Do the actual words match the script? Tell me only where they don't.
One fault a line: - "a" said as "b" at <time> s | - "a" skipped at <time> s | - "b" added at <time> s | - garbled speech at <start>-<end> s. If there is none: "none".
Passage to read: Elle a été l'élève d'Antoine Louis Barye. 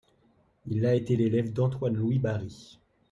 - "Elle" said as "Il" at 0.7 s